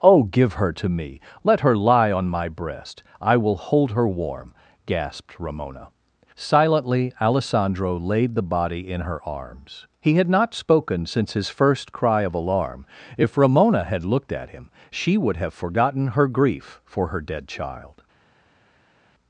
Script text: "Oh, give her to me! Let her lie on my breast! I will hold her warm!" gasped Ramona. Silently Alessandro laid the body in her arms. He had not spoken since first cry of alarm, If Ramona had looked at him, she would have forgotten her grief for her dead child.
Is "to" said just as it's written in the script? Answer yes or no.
yes